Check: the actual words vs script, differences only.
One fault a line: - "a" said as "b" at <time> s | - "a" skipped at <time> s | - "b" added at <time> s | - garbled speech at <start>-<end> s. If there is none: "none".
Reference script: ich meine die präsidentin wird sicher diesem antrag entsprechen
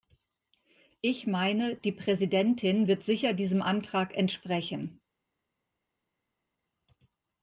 none